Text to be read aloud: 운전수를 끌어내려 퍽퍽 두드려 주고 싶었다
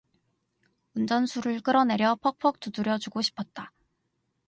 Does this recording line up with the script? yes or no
yes